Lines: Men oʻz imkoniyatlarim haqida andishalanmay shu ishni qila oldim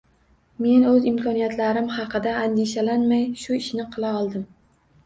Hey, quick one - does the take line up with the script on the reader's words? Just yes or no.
yes